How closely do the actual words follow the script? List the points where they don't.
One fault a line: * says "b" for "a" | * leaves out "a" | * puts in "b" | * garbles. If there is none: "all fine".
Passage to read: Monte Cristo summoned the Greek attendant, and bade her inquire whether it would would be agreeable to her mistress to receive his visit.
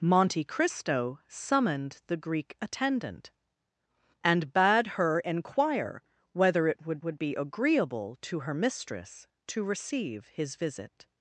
all fine